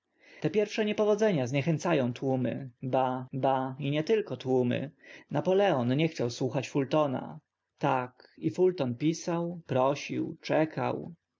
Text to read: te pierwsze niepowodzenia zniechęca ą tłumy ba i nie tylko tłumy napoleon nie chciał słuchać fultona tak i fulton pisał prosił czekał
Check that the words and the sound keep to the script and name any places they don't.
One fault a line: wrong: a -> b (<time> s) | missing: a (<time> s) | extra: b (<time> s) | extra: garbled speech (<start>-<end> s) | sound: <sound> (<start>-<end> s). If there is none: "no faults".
extra: ba (3.3 s)